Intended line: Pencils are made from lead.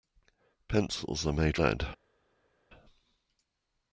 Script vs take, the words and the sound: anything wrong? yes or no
yes